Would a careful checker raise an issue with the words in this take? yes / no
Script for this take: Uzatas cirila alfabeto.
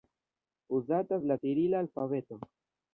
yes